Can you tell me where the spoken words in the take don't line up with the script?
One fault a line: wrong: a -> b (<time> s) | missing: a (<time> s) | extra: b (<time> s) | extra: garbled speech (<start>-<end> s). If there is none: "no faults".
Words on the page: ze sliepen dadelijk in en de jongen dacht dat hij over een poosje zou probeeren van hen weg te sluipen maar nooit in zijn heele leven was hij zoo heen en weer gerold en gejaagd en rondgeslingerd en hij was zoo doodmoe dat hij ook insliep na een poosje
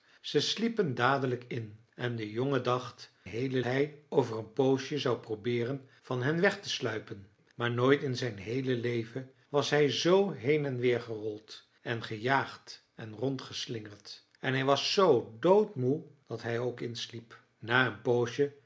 wrong: dat -> heele (3.2 s)